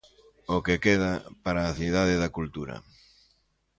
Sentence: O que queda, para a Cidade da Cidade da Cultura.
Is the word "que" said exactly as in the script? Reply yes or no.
yes